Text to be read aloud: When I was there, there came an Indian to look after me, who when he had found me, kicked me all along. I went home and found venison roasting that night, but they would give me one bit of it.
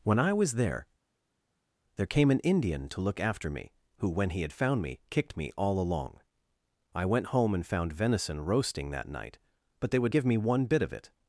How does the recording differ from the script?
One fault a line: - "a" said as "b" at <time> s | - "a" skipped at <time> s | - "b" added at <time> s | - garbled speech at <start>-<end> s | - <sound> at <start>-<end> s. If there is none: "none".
none